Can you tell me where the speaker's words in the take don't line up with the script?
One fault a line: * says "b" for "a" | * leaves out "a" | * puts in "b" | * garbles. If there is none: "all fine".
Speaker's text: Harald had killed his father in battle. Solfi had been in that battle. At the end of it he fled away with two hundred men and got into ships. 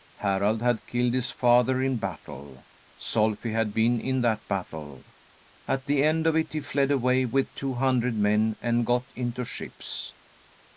all fine